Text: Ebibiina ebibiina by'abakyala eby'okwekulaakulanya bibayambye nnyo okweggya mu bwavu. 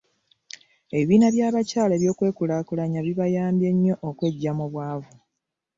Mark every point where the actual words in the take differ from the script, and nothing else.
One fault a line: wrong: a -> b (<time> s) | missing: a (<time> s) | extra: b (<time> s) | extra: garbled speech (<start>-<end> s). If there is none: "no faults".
missing: ebibiina (1.3 s)